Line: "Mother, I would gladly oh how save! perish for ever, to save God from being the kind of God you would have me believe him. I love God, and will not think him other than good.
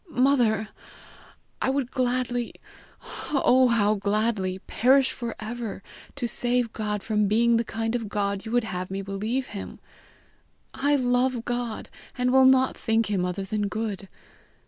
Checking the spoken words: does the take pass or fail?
fail